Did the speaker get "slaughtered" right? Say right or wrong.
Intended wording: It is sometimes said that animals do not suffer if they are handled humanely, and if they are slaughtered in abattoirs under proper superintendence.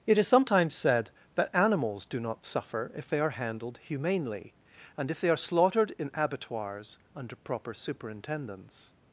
right